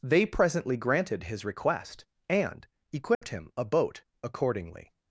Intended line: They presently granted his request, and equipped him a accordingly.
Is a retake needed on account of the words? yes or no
yes